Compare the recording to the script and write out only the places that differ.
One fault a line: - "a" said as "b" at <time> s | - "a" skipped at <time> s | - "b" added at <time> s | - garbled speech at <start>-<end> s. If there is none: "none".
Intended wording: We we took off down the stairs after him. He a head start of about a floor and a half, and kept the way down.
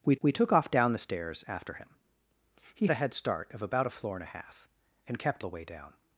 none